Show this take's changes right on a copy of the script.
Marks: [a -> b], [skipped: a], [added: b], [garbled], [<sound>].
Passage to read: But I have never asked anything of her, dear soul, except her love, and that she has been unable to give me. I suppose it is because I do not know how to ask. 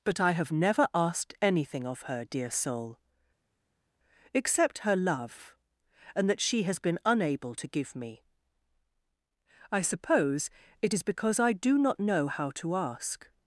But I have never asked anything of her, dear soul, except her love, and that she has been unable to give me. I suppose it is because I do not know how to ask.